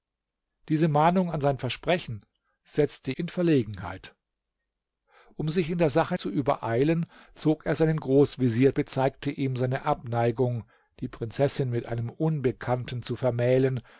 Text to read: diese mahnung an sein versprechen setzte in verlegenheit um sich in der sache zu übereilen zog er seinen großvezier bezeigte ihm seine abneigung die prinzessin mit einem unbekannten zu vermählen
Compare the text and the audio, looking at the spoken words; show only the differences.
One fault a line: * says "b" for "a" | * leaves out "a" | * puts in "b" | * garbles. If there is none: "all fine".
all fine